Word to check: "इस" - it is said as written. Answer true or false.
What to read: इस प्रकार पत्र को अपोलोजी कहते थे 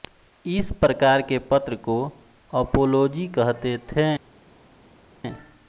true